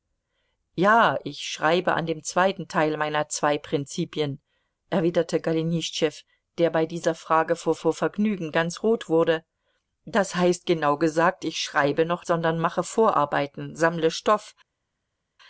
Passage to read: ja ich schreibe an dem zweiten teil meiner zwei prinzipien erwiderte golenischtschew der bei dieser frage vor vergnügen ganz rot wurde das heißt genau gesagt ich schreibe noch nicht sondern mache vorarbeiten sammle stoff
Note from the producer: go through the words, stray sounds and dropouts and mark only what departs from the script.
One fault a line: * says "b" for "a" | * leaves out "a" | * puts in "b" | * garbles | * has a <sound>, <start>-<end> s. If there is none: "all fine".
* puts in "vor"
* leaves out "nicht"